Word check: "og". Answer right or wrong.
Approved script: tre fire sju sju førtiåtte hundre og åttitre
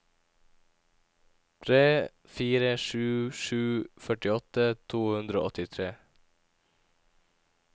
right